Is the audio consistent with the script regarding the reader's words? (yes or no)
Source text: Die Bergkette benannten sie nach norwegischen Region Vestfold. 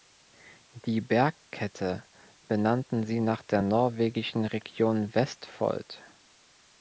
no